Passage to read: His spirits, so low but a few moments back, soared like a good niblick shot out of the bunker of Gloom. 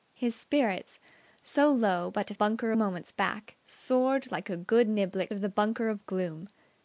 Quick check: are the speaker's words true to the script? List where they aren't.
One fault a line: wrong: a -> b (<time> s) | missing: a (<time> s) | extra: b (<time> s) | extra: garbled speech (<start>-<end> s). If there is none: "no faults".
wrong: few -> bunker (2.3 s)
missing: shot out (5.3 s)